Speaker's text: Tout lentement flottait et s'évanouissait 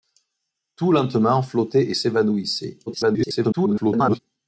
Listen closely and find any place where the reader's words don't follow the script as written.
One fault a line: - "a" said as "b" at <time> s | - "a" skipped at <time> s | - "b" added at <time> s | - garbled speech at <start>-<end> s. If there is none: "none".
- garbled speech at 2.9-4.2 s